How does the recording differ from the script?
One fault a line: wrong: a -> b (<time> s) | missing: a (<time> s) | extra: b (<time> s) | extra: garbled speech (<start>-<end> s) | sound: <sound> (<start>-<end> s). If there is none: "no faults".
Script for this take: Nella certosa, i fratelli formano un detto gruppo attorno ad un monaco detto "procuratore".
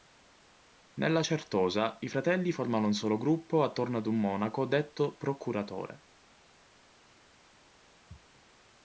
wrong: detto -> solo (2.9 s)